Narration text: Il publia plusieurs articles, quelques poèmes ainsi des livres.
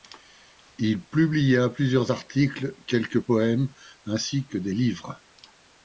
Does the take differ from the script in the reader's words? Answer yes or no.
yes